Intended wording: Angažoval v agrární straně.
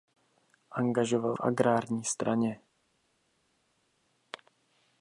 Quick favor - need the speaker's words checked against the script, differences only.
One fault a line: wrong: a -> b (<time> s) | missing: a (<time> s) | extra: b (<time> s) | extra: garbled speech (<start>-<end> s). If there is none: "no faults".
no faults